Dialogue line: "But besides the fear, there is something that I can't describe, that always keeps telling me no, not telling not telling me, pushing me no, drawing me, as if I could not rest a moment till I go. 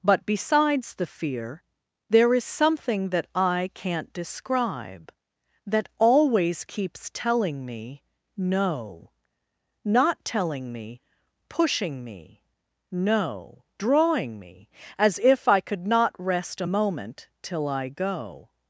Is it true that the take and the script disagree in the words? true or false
true